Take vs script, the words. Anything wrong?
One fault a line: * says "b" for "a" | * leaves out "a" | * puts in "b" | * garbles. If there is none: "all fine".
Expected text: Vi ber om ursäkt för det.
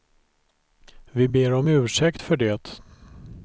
all fine